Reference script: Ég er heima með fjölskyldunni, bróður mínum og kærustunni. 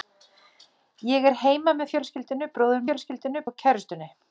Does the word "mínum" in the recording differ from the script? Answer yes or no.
yes